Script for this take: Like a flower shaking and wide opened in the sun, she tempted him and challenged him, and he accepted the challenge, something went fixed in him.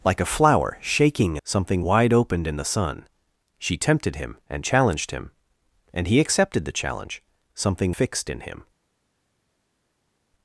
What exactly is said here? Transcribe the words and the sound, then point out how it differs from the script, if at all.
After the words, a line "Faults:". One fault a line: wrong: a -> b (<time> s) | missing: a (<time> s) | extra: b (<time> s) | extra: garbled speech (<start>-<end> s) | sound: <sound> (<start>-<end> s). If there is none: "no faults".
Like a flower shaking something wide opened in the sun, she tempted him and challenged him, and he accepted the challenge, something fixed in him.
Faults:
wrong: and -> something (1.4 s)
missing: went (8.0 s)